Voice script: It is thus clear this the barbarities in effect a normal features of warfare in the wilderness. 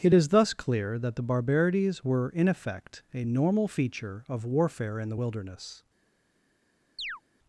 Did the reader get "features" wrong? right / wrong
wrong